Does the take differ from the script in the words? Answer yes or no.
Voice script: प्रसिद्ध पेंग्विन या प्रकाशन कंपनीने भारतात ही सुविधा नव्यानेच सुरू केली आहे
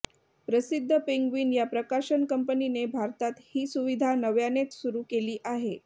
no